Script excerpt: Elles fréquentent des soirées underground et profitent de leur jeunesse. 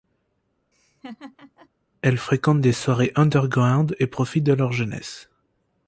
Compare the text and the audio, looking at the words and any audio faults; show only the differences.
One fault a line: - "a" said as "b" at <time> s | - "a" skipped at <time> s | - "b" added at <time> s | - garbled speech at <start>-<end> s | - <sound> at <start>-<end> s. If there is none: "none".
- laugh at 0.7-1.7 s